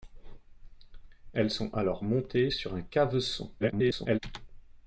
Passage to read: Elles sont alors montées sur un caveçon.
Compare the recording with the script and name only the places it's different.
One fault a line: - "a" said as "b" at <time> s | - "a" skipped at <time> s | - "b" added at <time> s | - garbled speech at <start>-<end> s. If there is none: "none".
- garbled speech at 3.6-4.2 s